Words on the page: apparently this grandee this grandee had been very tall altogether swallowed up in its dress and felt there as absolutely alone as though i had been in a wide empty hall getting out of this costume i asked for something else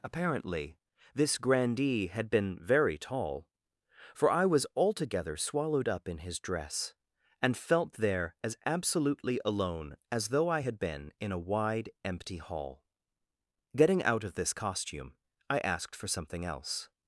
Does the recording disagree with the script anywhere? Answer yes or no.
yes